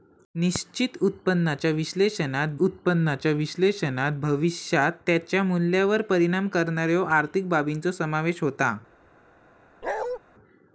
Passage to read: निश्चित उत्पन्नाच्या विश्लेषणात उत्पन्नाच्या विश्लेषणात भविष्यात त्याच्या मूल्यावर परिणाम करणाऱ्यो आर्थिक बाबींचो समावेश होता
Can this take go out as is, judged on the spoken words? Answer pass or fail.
pass